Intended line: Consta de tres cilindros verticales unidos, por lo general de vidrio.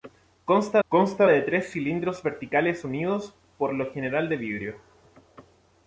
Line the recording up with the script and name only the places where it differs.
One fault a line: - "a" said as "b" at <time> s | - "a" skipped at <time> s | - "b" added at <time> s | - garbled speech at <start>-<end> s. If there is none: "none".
- "consta" added at 0.9 s